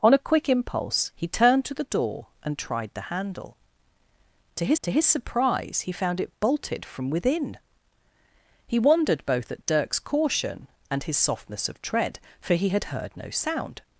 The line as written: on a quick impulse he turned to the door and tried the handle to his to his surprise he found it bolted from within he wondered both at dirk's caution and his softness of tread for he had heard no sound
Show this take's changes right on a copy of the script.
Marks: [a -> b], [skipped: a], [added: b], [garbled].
on a quick impulse he turned to the door and tried the handle to his to his surprise he found it bolted from within he wondered both at dirk's caution and his softness of tread for he had heard no sound